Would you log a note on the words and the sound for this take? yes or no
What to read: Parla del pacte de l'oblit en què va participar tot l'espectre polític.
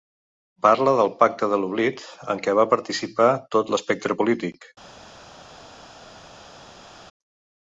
no